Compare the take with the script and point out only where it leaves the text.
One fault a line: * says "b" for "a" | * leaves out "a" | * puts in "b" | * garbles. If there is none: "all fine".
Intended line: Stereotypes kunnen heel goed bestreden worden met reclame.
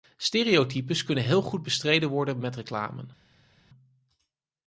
all fine